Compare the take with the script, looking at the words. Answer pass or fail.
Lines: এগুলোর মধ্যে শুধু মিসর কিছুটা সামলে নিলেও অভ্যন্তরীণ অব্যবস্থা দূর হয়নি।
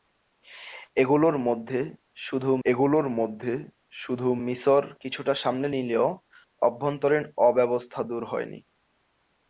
fail